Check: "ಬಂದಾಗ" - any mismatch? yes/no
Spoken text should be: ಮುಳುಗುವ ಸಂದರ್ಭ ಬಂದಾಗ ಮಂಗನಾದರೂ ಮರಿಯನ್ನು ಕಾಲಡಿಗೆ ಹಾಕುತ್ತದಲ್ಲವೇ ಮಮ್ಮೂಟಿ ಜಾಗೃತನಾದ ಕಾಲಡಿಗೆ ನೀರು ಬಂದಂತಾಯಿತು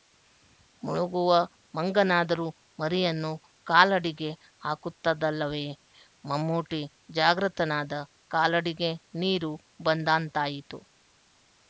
yes